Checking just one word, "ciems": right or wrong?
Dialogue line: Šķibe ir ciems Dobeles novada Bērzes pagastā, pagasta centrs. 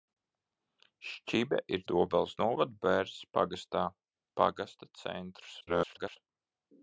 wrong